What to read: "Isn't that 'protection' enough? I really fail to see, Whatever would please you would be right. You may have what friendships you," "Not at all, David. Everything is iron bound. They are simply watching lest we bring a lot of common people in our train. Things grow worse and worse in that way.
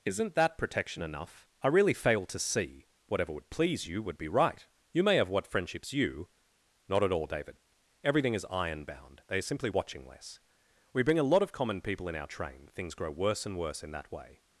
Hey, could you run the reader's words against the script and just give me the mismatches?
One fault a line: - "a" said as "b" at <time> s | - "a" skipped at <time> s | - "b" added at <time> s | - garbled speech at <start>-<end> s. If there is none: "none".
- "lest" said as "less" at 10.1 s